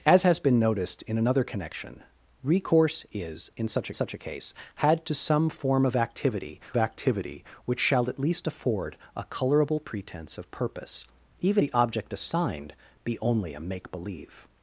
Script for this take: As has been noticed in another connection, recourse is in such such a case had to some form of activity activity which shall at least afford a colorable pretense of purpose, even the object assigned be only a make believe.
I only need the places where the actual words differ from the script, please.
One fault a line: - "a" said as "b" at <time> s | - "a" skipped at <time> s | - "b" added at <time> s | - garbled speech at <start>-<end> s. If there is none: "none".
none